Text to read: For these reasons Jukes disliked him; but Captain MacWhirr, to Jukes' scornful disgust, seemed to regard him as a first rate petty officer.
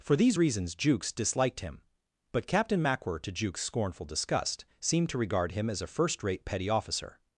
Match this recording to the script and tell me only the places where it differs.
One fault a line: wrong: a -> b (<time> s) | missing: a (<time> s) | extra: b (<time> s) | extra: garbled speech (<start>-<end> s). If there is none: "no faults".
no faults